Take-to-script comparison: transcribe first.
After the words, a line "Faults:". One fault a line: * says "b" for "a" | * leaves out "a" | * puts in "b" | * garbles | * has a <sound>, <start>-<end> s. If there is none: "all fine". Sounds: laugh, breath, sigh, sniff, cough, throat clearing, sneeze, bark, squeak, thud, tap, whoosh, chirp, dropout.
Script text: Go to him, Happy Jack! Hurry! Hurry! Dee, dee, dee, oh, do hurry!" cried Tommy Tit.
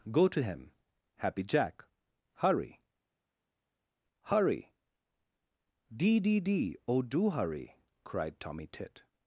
Go to him, Happy Jack! Hurry! Hurry! Dee, dee, dee, oh, do hurry!" cried Tommy Tit.
Faults:
all fine